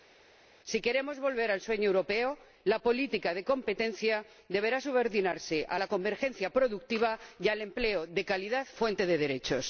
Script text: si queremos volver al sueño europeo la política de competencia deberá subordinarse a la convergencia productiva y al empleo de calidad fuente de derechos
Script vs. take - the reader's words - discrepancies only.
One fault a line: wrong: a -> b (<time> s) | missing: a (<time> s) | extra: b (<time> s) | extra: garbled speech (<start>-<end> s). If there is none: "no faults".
no faults